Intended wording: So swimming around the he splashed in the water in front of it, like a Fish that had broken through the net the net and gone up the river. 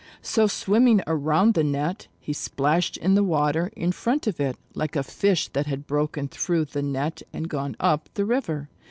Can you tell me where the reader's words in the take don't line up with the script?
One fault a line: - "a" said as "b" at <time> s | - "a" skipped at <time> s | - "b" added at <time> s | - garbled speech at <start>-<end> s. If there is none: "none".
- "net" added at 1.6 s
- "the net" skipped at 7.2 s